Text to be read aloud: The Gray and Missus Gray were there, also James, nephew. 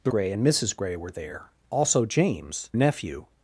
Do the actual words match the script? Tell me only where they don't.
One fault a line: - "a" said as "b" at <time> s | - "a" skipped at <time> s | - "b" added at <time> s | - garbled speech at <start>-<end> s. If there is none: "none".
none